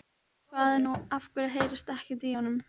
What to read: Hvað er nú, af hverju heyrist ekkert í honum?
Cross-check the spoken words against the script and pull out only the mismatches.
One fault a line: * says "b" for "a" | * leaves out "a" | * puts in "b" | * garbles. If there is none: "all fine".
all fine